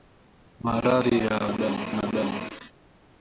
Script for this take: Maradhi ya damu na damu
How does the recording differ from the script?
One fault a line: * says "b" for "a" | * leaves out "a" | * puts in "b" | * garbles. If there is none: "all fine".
all fine